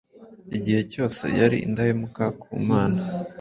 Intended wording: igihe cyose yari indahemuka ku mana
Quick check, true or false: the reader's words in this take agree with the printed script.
true